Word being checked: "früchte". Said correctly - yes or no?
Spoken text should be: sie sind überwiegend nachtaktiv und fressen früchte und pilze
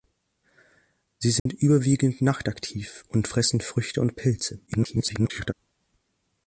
yes